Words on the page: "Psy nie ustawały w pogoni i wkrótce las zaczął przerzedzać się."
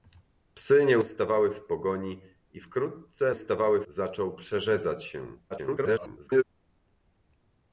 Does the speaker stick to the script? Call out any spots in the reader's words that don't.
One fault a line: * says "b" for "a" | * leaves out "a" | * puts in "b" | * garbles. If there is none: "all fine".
* says "ustawały" for "las"
* garbles